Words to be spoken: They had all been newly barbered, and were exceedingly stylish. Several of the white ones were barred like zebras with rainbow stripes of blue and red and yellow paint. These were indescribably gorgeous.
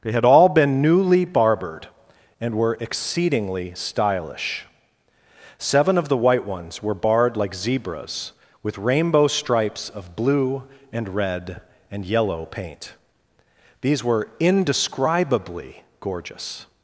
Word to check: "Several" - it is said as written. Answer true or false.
false